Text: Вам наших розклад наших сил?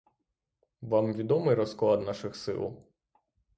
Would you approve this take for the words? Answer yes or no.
no